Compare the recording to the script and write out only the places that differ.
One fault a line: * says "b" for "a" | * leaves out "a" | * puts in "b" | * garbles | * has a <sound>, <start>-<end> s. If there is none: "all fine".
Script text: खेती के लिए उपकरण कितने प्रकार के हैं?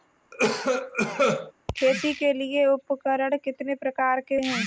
* has a cough, 0.3-1.5 s